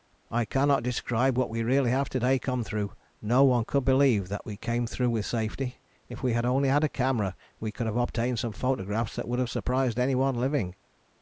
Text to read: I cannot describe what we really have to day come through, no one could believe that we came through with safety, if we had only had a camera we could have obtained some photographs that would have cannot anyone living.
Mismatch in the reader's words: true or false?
true